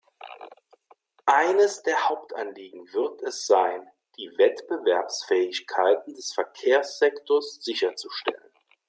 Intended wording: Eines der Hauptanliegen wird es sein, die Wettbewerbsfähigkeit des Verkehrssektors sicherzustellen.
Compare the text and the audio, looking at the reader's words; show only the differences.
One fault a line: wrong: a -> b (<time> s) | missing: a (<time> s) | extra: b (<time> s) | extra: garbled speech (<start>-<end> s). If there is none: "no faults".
no faults